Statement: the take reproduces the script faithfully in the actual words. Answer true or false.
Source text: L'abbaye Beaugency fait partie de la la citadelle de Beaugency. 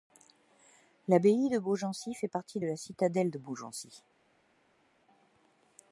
false